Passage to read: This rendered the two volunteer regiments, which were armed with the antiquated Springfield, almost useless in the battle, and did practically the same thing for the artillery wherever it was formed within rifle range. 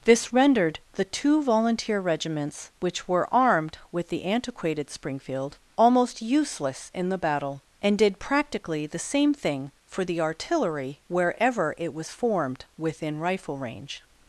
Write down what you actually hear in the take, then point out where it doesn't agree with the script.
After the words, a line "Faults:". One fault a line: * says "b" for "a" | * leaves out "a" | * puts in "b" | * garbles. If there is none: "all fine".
This rendered the two volunteer regiments, which were armed with the antiquated Springfield, almost useless in the battle, and did practically the same thing for the artillery wherever it was formed within rifle range.
Faults:
all fine